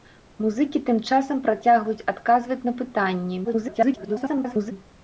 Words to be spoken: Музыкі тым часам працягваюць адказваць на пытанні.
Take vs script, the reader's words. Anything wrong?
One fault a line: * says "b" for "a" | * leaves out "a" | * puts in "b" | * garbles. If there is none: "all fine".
* garbles